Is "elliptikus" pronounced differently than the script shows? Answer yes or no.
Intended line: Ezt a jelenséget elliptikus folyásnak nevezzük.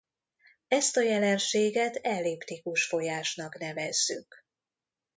no